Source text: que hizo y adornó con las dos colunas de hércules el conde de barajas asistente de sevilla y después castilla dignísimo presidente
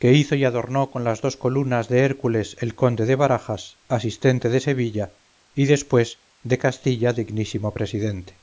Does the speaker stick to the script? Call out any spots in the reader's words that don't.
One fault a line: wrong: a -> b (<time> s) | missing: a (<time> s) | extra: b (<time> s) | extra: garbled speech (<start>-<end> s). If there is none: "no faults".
extra: de (6.4 s)